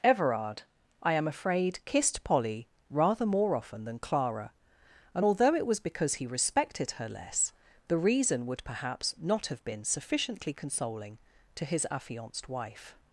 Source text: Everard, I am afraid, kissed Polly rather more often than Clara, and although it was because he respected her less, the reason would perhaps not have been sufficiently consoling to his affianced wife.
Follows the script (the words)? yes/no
yes